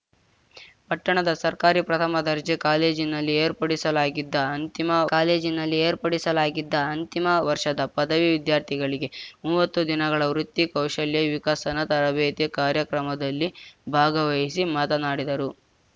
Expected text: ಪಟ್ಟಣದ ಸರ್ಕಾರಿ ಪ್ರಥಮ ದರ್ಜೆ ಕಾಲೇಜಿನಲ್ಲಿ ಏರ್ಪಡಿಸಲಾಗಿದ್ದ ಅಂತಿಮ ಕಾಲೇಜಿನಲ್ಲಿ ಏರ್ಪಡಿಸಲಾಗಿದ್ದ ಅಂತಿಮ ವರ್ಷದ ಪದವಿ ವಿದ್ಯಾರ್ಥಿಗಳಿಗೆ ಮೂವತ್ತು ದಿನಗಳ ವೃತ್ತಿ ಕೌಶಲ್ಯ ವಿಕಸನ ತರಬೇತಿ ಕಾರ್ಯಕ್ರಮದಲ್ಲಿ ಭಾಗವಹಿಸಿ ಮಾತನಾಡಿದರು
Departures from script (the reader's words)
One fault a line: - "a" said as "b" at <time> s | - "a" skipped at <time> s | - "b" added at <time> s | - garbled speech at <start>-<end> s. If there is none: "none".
none